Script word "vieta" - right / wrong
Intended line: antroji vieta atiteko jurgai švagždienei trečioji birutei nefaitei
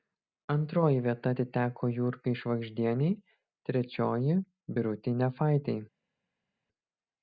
right